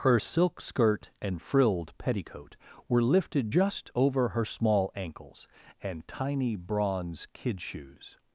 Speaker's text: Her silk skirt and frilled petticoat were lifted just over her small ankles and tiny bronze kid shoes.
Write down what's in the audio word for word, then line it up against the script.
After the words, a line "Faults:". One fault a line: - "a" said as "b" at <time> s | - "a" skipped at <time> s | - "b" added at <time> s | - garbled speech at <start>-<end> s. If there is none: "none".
Her silk skirt and frilled petticoat were lifted just over her small ankles and tiny bronze kid shoes.
Faults:
none